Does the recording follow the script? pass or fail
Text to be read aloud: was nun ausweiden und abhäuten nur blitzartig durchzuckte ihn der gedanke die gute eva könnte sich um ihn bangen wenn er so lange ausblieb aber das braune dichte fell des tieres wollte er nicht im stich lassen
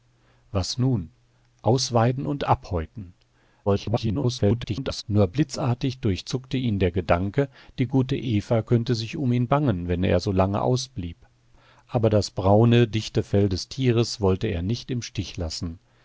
fail